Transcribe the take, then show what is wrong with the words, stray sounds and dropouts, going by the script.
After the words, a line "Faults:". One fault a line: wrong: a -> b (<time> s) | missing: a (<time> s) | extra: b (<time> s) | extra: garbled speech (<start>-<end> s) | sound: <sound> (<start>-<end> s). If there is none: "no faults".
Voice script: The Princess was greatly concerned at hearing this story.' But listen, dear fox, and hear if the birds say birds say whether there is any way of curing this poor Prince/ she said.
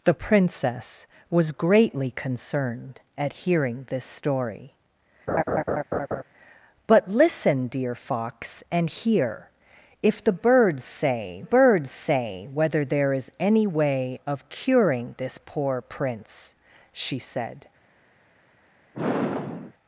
The Princess was greatly concerned at hearing this story.' But listen, dear fox, and hear if the birds say birds say whether there is any way of curing this poor Prince/ she said.
Faults:
sound: laugh (5.3-6.2 s)
sound: sigh (18.9-19.7 s)